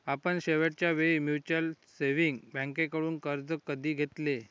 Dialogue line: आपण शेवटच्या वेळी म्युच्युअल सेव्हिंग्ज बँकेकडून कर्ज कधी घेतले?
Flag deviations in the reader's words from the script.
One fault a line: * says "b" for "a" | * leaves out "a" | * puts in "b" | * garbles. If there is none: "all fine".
all fine